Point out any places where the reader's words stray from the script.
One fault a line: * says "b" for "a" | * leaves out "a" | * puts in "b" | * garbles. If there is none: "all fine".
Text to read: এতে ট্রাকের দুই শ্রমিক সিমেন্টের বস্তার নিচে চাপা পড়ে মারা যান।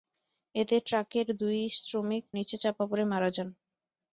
* leaves out "সিমেন্টের বস্তার"